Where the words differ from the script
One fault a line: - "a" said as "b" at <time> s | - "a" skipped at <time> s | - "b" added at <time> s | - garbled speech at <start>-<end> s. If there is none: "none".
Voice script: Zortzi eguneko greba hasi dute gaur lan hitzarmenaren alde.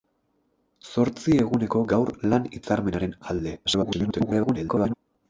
- "greba hasi dute" skipped at 1.8 s
- garbled speech at 3.6-4.9 s